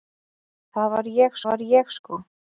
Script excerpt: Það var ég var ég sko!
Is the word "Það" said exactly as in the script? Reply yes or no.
yes